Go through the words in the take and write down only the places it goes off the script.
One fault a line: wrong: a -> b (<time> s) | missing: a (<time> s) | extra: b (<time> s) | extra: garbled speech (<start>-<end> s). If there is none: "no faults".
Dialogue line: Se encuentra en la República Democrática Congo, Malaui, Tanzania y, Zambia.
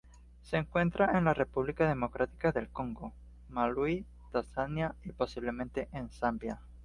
extra: del (2.5 s)
extra: posiblemente en (5.1 s)